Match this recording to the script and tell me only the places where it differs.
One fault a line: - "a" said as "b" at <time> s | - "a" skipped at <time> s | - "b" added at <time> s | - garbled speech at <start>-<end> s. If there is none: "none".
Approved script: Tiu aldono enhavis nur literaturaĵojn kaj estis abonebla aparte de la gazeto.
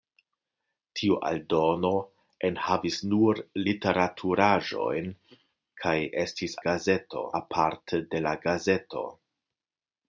- "abonebla" said as "gazeto" at 6.7 s